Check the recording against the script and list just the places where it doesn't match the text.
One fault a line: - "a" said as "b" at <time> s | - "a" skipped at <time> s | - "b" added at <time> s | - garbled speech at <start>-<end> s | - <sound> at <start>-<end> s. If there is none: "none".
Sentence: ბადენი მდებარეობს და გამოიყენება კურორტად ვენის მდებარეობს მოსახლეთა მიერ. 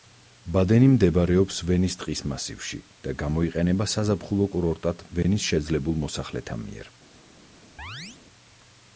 - "ვენის ტყის მასივში" added at 1.7 s
- "საზაფხულო" added at 4.0 s
- "მდებარეობს" said as "შეძლებულ" at 5.5 s
- chirp at 7.8-8.2 s